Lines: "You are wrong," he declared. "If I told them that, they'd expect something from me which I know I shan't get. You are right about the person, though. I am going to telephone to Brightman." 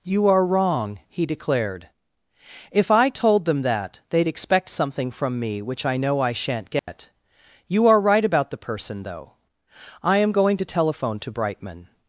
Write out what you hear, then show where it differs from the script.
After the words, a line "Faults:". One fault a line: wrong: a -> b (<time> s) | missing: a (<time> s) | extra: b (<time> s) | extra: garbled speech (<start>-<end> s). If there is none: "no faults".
"You are wrong," he declared. "If I told them that, they'd expect something from me which I know I shan't get. You are right about the person, though. I am going to telephone to Brightman."
Faults:
no faults